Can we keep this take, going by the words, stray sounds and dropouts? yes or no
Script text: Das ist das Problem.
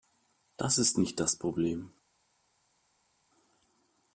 no